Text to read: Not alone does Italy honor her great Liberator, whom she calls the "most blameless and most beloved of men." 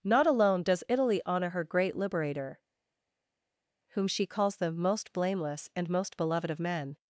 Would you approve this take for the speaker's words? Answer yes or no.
yes